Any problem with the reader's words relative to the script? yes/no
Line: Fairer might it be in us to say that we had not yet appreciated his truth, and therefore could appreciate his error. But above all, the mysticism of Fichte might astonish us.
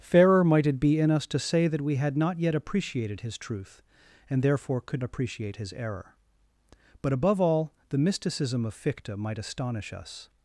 no